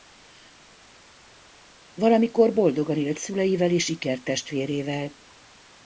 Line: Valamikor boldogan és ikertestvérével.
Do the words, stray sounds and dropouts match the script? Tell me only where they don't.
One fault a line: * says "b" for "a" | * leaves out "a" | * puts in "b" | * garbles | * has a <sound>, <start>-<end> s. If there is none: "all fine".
* puts in "élt szüleivel"